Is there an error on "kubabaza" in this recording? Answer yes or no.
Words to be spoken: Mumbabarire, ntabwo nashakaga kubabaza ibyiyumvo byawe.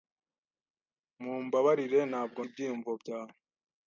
yes